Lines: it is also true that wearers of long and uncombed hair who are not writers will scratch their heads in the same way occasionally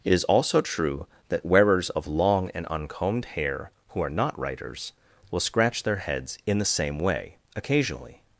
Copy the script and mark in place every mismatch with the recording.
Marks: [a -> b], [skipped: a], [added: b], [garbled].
it is also true that wearers of long and uncombed hair who are not writers will scratch their heads in the same way occasionally